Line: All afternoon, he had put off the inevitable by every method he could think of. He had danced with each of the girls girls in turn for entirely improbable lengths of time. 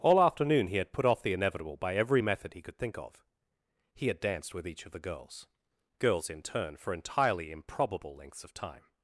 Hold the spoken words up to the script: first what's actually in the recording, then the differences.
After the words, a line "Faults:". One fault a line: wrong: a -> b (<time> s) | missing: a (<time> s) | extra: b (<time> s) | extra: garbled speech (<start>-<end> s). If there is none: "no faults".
All afternoon, he had put off the inevitable by every method he could think of. He had danced with each of the girls girls in turn for entirely improbable lengths of time.
Faults:
no faults